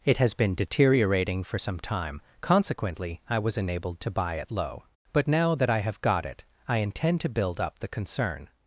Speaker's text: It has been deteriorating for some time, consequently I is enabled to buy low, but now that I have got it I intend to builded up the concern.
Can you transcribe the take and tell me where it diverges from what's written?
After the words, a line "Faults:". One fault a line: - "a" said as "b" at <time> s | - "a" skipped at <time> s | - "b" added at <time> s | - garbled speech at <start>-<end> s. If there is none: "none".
It has been deteriorating for some time, consequently I was enabled to buy it low, but now that I have got it I intend to build up the concern.
Faults:
- "is" said as "was" at 3.4 s
- "it" added at 4.4 s
- "builded" said as "build" at 7.3 s